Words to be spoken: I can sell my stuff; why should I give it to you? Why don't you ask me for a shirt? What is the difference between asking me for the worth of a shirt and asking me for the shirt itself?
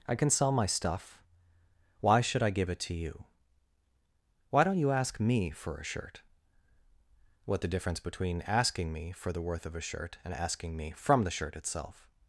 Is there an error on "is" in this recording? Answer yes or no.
yes